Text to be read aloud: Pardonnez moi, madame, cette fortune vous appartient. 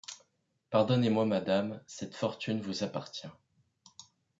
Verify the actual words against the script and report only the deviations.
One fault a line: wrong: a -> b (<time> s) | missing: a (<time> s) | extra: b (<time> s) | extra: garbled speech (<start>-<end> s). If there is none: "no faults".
no faults